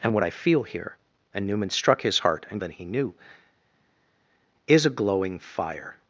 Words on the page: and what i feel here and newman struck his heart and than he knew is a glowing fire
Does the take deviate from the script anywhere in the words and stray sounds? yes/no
no